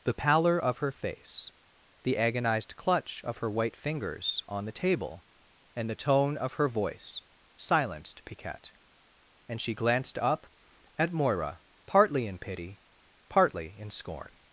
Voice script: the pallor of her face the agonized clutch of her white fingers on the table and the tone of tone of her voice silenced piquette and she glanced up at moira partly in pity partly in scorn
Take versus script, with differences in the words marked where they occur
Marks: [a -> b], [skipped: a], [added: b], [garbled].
the pallor of her face the agonized clutch of her white fingers on the table and the tone of [skipped: tone of] her voice silenced piquette and she glanced up at moira partly in pity partly in scorn